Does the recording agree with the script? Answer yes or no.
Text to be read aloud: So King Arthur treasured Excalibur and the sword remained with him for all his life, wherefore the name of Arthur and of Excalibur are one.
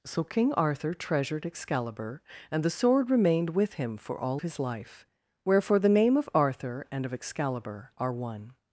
yes